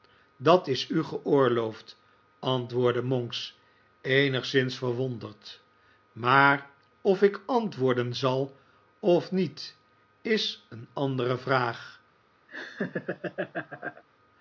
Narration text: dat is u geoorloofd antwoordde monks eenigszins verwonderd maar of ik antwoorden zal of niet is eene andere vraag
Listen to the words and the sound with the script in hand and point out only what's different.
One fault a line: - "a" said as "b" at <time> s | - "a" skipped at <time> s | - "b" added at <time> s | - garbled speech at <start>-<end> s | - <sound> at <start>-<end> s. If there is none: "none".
- laugh at 12.5-14.0 s